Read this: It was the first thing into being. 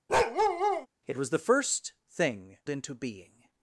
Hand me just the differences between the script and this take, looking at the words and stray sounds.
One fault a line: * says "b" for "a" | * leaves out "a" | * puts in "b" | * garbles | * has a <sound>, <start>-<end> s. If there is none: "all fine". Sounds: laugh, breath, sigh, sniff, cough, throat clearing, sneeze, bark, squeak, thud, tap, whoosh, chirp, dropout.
* has a bark, 0.1-0.9 s